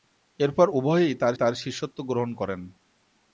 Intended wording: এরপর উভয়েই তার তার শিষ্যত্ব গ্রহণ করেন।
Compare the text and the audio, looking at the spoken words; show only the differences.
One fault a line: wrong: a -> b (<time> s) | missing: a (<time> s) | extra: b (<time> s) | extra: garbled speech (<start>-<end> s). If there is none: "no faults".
no faults